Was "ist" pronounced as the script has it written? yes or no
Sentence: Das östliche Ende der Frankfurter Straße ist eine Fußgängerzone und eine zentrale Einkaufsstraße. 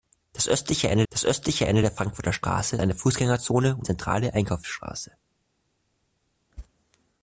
no